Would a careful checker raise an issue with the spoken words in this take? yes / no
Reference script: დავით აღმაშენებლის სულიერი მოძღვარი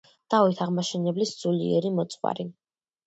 no